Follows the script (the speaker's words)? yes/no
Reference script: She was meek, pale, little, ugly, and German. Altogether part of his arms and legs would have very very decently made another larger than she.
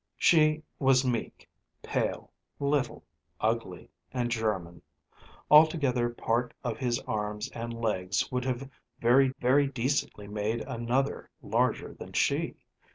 yes